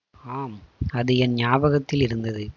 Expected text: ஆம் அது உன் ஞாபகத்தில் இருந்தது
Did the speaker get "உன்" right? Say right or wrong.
wrong